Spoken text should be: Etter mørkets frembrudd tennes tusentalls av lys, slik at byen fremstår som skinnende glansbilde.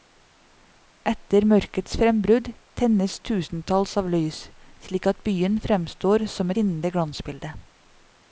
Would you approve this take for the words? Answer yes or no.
yes